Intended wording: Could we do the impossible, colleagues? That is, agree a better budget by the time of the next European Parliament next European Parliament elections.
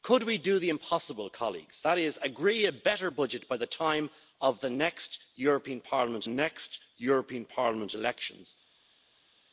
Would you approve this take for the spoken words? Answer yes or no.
yes